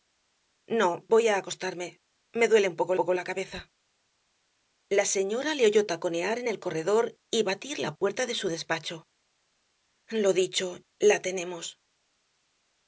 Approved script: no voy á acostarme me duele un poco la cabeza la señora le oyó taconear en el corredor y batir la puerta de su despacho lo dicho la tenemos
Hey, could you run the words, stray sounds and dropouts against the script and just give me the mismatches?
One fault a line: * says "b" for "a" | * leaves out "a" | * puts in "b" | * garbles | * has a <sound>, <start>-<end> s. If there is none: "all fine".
* puts in "poco"